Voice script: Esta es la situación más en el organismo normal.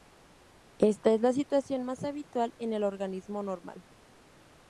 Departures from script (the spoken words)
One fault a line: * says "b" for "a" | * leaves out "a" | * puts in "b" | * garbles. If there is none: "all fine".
* puts in "habitual"